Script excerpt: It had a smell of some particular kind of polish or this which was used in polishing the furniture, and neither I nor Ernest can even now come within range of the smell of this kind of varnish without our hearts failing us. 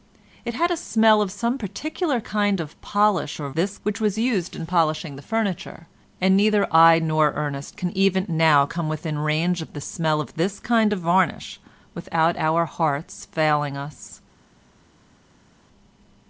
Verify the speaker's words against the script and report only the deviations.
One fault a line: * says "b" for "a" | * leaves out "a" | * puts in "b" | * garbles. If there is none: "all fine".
all fine